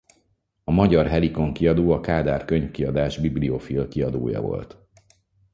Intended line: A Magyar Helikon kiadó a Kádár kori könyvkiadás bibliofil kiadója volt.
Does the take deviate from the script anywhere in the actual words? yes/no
yes